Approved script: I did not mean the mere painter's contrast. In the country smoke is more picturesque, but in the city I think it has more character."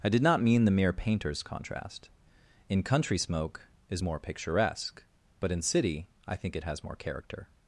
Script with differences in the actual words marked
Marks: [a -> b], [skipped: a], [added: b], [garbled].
I did not mean the mere painter's contrast. In [skipped: the] country smoke is more picturesque, but in [skipped: the] city I think it has more character."